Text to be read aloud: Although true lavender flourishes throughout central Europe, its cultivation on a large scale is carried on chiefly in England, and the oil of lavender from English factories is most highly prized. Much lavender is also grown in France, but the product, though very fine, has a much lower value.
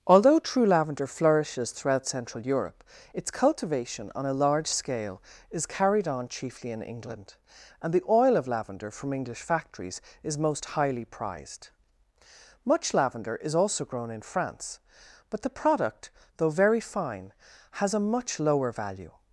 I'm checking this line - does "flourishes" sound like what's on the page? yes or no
yes